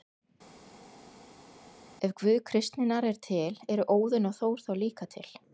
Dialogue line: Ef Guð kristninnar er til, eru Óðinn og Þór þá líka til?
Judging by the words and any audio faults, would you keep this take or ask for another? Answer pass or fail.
pass